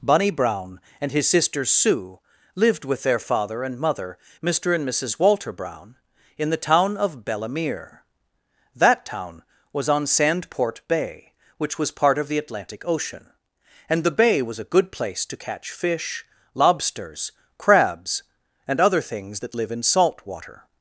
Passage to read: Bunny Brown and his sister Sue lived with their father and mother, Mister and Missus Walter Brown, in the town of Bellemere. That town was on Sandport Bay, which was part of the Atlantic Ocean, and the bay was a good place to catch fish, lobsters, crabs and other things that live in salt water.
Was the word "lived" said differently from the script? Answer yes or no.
no